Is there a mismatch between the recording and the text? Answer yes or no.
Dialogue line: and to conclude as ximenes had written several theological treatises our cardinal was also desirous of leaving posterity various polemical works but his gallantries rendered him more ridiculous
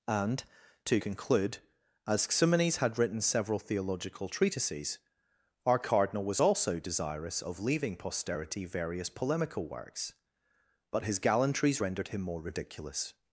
no